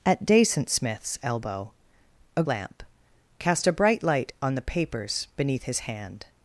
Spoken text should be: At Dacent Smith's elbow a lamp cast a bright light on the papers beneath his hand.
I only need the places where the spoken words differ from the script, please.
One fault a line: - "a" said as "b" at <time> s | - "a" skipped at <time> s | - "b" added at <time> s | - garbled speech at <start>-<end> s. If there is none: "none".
none